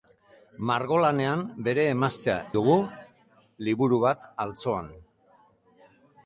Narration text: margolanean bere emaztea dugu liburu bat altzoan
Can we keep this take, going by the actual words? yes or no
yes